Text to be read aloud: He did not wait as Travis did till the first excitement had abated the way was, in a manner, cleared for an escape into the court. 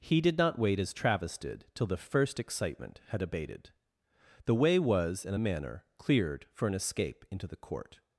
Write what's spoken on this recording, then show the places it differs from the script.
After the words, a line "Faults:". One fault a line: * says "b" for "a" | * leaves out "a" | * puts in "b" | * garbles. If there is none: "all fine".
He did not wait as Travis did till the first excitement had abated the way was, in a manner, cleared for an escape into the court.
Faults:
all fine